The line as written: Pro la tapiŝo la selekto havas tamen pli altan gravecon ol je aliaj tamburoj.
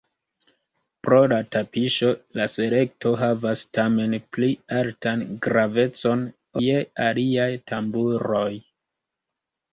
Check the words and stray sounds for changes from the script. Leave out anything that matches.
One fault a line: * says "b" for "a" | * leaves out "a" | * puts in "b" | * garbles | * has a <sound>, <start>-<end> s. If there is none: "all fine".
* leaves out "ol"